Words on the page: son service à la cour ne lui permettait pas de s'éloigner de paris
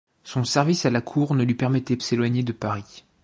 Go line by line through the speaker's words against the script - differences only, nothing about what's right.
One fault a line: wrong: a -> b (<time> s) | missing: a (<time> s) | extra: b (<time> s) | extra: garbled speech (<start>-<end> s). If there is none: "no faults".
missing: pas de (2.0 s)